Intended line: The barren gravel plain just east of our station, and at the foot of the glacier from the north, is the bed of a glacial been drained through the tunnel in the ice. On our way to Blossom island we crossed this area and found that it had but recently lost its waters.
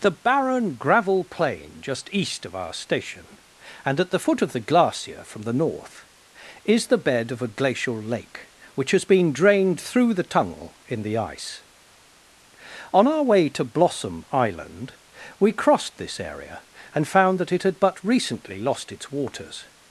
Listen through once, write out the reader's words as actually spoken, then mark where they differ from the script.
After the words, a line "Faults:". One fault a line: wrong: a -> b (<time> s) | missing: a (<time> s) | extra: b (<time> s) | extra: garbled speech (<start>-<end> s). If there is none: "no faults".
The barren gravel plain just east of our station, and at the foot of the glacier from the north, is the bed of a glacial lake which has been drained through the tunnel in the ice. On our way to Blossom island we crossed this area and found that it had but recently lost its waters.
Faults:
extra: lake which has (8.0 s)